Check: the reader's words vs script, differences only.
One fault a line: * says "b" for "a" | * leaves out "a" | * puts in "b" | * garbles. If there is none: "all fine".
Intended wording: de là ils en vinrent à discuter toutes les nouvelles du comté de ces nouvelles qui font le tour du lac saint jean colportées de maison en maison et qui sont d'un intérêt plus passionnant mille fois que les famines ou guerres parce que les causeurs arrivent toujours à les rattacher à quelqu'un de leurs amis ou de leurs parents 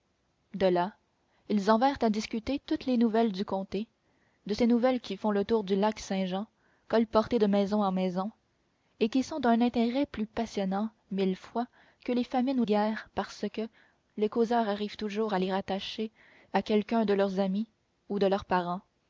all fine